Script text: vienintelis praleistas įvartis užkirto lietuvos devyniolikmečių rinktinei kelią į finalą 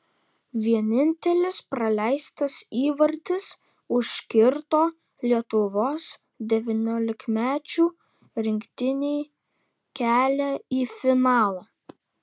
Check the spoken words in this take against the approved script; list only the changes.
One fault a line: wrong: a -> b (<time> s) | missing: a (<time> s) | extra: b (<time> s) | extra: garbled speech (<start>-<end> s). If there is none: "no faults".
no faults